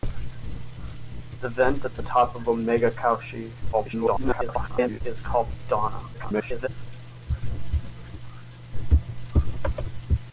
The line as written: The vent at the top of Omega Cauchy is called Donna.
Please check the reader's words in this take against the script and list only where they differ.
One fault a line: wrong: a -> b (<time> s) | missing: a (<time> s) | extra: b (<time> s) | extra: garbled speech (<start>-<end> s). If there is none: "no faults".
extra: garbled speech (3.7-5.0 s)
extra: garbled speech (6.1-6.7 s)